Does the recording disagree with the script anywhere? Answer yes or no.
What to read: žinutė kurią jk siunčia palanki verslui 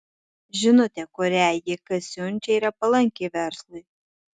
yes